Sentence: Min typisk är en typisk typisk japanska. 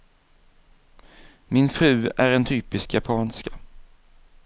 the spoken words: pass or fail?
fail